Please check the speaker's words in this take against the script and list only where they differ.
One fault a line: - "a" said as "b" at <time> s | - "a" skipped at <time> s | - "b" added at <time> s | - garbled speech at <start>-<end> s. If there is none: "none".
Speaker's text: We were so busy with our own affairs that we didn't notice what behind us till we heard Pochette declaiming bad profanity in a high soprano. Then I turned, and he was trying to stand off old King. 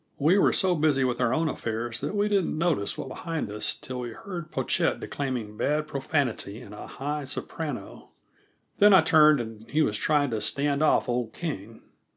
none